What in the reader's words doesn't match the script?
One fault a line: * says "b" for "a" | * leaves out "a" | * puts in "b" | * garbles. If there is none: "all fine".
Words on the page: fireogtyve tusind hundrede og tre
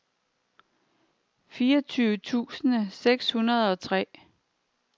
* puts in "seks"